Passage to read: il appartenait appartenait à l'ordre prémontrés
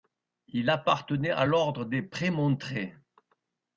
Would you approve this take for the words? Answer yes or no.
no